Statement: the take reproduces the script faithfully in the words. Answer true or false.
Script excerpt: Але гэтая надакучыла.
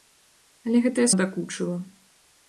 true